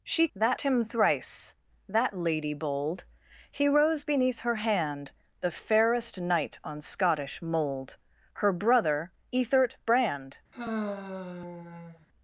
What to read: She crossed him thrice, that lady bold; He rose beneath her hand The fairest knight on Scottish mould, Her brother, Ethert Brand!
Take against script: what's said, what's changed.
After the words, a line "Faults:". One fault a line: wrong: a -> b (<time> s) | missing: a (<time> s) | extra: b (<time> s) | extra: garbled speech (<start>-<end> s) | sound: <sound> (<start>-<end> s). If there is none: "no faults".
She that him thrice, that lady bold; He rose beneath her hand The fairest knight on Scottish mould, Her brother, Ethert Brand!
Faults:
wrong: crossed -> that (0.3 s)
sound: sigh (10.5-12.1 s)